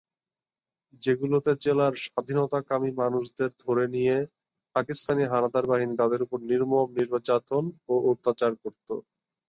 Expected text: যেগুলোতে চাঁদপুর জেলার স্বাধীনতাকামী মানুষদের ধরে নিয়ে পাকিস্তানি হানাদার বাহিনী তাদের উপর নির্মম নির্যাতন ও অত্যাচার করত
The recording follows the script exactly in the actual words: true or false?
false